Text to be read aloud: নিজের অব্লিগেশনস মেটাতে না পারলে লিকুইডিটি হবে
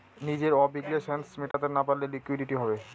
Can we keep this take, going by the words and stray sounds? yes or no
no